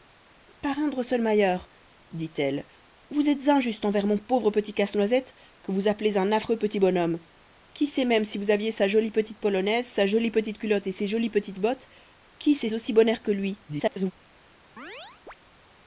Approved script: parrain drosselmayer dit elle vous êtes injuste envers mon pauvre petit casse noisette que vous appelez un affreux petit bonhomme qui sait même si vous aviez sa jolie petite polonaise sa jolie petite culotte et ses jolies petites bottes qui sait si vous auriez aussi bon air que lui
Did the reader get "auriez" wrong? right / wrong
wrong